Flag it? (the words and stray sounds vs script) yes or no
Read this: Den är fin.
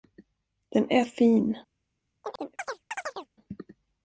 yes